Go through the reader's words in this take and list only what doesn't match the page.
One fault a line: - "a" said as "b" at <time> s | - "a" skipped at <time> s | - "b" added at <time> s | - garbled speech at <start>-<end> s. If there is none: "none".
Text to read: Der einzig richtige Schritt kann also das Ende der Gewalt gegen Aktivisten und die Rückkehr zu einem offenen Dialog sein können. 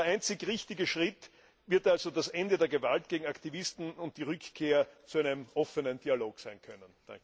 - "kann" said as "wird" at 1.7 s